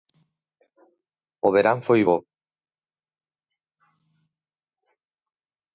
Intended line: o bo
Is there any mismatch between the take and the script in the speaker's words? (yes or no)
yes